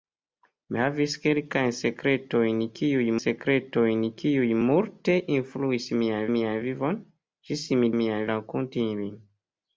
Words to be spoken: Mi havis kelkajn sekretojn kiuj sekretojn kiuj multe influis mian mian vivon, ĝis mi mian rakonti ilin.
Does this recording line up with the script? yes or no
yes